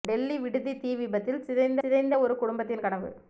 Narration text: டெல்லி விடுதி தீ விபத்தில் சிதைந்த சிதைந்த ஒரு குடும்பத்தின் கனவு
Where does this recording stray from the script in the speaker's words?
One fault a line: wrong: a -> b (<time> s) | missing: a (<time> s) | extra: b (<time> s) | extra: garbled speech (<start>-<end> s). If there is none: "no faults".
no faults